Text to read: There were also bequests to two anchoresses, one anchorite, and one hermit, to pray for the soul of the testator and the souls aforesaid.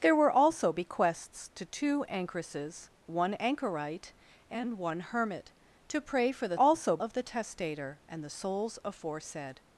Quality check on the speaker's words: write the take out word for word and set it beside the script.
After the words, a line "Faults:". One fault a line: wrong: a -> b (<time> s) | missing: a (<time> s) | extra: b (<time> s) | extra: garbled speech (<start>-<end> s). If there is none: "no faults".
There were also bequests to two anchoresses, one anchorite, and one hermit, to pray for the also of the testator and the souls aforesaid.
Faults:
wrong: soul -> also (6.6 s)